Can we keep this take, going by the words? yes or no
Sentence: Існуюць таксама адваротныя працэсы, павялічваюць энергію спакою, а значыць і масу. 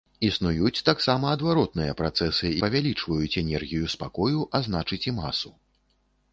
yes